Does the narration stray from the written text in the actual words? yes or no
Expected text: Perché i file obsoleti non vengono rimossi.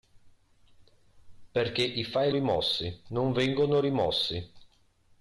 yes